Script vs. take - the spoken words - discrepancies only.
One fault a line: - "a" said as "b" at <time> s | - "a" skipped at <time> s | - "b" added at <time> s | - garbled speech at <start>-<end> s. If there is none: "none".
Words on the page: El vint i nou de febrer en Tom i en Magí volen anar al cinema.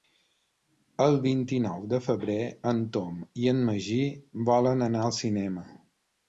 none